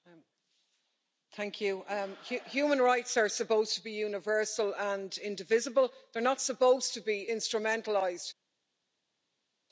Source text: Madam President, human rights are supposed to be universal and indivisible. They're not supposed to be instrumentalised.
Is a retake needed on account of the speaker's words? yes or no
no